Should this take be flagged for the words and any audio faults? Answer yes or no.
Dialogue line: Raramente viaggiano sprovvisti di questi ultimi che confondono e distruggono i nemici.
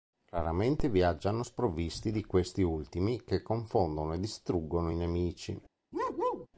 yes